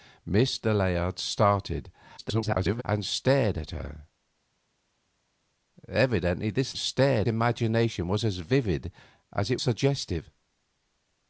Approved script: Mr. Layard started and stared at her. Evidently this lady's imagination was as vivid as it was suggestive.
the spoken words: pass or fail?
fail